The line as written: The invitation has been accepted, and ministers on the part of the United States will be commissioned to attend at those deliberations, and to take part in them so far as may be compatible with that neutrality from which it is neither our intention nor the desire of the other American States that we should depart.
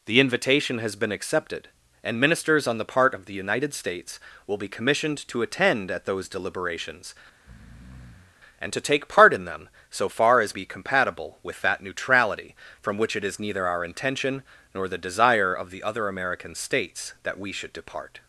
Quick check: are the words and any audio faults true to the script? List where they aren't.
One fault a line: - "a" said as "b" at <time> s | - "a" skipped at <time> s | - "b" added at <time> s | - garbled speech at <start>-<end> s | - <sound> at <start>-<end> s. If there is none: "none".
- breath at 7.3-8.4 s
- "may" skipped at 10.5 s